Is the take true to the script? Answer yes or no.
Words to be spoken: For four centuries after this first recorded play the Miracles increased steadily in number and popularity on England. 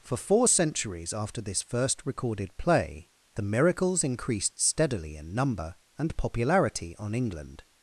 yes